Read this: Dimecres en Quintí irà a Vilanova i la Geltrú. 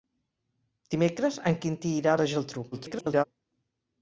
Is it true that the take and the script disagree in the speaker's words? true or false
true